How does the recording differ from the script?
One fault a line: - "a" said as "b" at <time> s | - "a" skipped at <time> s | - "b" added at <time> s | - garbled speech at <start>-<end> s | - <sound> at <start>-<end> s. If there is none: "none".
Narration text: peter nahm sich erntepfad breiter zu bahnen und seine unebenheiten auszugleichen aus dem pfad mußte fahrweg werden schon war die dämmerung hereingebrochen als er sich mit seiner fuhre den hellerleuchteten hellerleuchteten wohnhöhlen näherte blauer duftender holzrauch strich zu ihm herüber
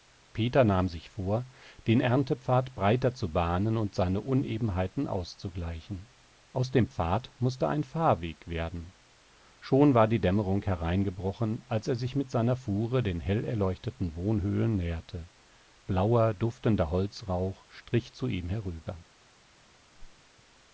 - "vor den" added at 1.1 s
- "ein" added at 7.7 s
- "hellerleuchteten" skipped at 14.2 s
- whoosh at 19.9-20.3 s